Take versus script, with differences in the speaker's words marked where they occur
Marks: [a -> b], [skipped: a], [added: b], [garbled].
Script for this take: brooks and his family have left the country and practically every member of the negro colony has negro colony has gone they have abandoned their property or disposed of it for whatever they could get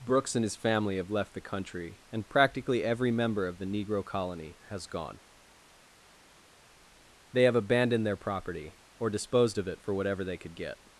brooks and his family have left the country and practically every member of the negro colony has [skipped: negro colony has] gone they have abandoned their property or disposed of it for whatever they could get